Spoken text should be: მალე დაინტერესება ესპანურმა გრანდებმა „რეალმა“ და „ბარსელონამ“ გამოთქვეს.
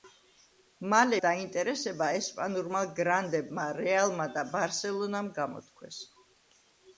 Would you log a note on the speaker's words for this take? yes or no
no